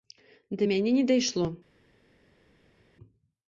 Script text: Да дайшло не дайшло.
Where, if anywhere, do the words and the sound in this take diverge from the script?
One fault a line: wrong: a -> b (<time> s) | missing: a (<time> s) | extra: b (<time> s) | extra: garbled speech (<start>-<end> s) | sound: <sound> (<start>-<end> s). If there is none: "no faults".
wrong: дайшло -> мяне (0.6 s)